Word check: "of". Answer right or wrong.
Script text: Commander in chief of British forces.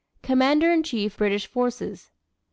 wrong